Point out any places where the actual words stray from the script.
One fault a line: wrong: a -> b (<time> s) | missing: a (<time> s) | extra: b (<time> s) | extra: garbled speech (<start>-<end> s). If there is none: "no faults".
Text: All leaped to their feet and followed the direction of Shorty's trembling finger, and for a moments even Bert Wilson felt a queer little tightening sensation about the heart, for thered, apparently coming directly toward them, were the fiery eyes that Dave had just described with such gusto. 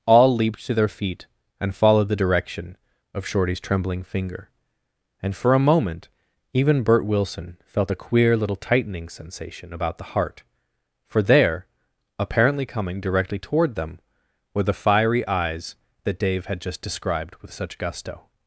wrong: moments -> moment (5.6 s)
wrong: thered -> there (11.2 s)